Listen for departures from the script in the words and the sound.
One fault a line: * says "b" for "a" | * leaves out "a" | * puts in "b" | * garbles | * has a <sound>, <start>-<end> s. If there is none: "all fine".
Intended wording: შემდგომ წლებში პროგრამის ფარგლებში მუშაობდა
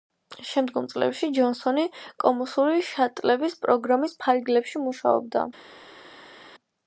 * puts in "ჯონსონი კოსმოსური შატლების"